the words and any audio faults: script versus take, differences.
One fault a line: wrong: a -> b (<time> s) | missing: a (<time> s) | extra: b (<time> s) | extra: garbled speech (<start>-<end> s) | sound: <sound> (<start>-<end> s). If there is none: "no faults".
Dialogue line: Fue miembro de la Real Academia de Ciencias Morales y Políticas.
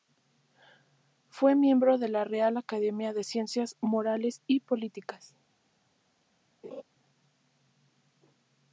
sound: laugh (6.6-6.8 s)